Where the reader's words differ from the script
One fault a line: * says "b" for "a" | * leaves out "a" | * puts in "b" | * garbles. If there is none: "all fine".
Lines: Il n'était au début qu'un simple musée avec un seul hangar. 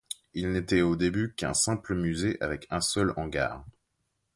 all fine